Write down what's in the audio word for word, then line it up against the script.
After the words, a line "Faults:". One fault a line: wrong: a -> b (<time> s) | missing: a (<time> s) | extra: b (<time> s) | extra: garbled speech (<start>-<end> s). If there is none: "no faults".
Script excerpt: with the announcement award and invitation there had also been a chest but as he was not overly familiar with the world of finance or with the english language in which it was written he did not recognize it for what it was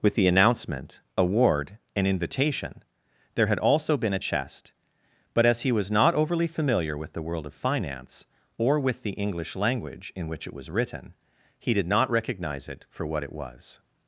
with the announcement award and invitation there had also been a chest but as he was not overly familiar with the world of finance or with the english language in which it was written he did not recognize it for what it was
Faults:
no faults